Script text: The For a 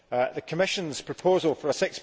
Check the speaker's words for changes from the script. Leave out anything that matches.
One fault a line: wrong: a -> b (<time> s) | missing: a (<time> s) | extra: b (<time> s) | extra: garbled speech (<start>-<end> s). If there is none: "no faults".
extra: Commission's proposal (0.5 s)